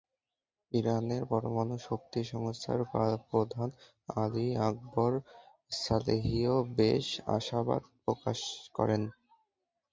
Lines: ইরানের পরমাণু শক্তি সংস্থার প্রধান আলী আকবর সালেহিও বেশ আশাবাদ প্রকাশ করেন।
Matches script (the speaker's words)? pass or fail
pass